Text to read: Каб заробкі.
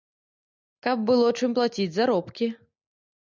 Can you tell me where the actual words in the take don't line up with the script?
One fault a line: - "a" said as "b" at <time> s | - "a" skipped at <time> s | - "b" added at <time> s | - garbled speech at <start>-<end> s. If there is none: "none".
- "было чым плаціць" added at 1.1 s